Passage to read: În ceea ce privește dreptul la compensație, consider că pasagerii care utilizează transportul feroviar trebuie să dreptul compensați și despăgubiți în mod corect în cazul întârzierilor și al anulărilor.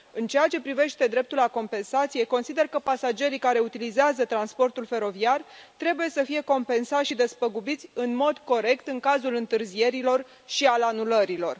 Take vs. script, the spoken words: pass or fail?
fail